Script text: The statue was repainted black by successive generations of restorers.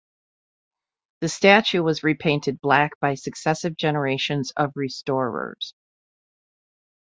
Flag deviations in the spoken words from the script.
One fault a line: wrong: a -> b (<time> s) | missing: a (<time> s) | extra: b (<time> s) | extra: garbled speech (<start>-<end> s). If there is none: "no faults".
no faults